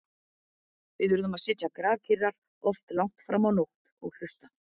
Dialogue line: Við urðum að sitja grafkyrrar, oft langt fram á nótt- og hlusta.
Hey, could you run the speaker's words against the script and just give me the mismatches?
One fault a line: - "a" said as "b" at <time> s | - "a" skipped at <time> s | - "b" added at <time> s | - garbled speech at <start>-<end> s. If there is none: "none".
none